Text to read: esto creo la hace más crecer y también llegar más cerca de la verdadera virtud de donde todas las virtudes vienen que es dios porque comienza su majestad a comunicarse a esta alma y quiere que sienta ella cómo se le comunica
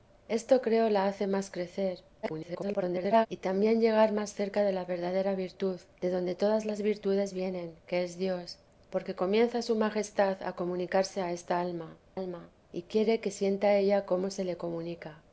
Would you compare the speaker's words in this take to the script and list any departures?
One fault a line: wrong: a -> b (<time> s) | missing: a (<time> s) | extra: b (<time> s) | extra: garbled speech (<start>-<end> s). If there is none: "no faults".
extra: garbled speech (2.2-3.3 s)
extra: alma (12.1 s)